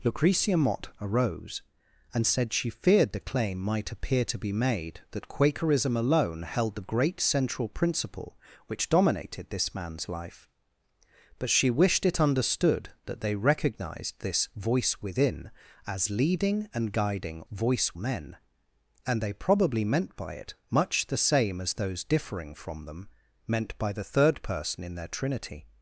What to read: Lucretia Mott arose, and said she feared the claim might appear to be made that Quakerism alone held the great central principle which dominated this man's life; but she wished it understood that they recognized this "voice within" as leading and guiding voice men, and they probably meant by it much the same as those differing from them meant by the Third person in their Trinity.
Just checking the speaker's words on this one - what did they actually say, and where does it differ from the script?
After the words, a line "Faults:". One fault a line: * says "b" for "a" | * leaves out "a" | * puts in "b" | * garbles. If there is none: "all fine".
Lucretia Mott arose, and said she feared the claim might appear to be made that Quakerism alone held the great central principle which dominated this man's life; but she wished it understood that they recognized this "voice within" as leading and guiding voice men, and they probably meant by it much the same as those differing from them meant by the Third person in their Trinity.
Faults:
all fine